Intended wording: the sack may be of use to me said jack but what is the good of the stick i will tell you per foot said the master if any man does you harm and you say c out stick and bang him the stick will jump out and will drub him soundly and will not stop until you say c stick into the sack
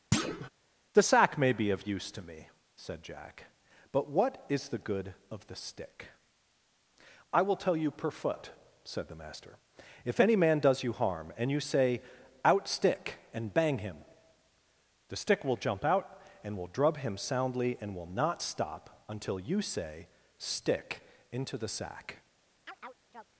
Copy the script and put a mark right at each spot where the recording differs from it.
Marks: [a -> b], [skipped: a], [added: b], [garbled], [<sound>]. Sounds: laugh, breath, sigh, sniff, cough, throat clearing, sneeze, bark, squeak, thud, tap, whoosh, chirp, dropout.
[thud] the sack may be of use to me said jack but what is the good of the stick i will tell you per foot said the master if any man does you harm and you say [skipped: c] out stick and bang him the stick will jump out and will drub him soundly and will not stop until you say [skipped: c] stick into the sack [chirp]